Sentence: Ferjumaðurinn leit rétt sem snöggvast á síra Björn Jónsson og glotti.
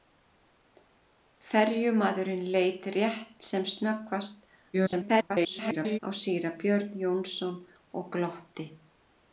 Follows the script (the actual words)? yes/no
no